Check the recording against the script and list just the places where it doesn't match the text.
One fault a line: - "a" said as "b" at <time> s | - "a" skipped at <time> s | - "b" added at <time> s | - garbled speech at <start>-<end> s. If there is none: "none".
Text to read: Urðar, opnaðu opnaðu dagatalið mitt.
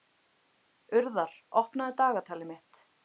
- "opnaðu" skipped at 1.9 s